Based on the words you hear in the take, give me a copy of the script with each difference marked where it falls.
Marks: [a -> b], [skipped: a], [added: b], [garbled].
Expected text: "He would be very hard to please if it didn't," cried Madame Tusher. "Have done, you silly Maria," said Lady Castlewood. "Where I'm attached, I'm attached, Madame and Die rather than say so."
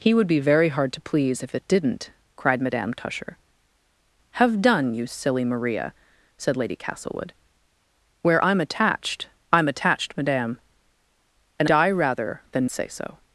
"He would be very hard to please if it didn't," cried Madame Tusher. "Have done, you silly Maria," said Lady Castlewood. "Where I'm attached, I'm attached, Madame and Die rather than say so."